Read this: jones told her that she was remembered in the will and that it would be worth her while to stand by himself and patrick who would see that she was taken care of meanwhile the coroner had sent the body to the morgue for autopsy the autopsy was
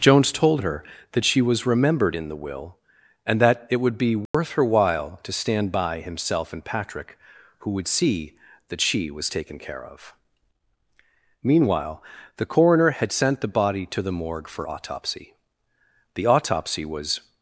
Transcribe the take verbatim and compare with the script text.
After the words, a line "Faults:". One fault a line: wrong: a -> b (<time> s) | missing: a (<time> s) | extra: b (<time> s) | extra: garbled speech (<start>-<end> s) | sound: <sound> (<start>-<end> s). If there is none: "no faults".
jones told her that she was remembered in the will and that it would be worth her while to stand by himself and patrick who would see that she was taken care of meanwhile the coroner had sent the body to the morgue for autopsy the autopsy was
Faults:
sound: dropout (4.3-4.3 s)